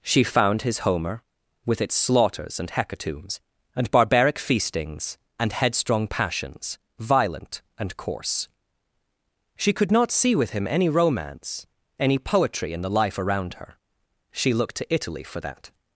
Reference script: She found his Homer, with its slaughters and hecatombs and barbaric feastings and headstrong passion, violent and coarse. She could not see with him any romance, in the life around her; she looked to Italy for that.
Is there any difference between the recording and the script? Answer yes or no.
yes